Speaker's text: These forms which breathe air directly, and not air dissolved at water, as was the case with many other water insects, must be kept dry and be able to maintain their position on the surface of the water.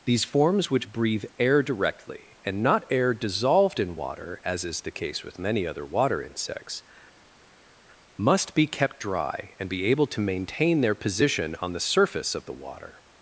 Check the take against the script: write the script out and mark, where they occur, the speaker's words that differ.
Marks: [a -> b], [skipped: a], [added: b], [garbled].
These forms which breathe air directly, and not air dissolved [at -> in] water, as [was -> is] the case with many other water insects, must be kept dry and be able to maintain their position on the surface of the water.